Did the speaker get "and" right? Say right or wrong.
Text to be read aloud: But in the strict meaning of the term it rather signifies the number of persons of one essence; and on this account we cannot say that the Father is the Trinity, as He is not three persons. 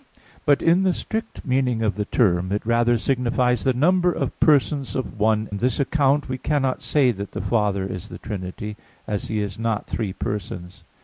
wrong